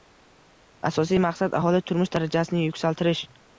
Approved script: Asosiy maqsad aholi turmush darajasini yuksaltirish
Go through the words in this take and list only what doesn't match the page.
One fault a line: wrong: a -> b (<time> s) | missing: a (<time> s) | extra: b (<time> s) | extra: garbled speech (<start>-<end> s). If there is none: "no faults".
no faults